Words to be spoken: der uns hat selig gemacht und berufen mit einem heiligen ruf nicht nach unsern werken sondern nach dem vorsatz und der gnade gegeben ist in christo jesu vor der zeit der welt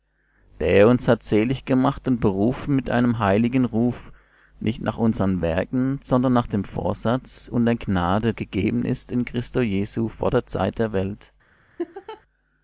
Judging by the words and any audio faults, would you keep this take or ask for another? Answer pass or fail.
fail